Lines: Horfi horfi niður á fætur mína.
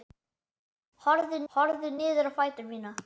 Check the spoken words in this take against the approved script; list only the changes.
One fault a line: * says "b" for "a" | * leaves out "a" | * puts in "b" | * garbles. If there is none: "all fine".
all fine